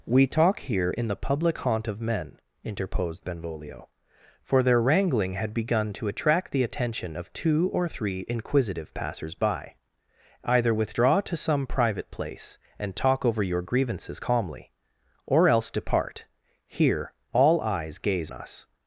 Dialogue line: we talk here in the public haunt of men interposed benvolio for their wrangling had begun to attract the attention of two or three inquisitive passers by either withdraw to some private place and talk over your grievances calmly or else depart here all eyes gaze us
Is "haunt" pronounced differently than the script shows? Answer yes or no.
no